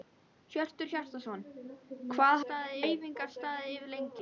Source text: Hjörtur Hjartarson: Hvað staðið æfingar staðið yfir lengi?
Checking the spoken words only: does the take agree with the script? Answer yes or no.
yes